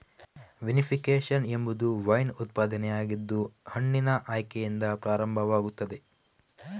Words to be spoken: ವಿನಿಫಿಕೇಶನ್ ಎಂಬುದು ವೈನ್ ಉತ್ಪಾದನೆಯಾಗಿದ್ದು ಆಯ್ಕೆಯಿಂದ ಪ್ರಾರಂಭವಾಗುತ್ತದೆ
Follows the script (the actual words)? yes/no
no